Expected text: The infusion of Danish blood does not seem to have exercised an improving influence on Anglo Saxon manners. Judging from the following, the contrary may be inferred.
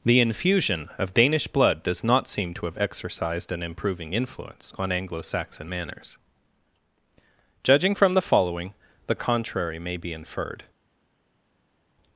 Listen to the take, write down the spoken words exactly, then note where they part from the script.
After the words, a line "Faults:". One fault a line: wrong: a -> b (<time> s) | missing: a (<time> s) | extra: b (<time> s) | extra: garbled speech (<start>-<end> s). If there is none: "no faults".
The infusion of Danish blood does not seem to have exercised an improving influence on Anglo Saxon manners. Judging from the following, the contrary may be inferred.
Faults:
no faults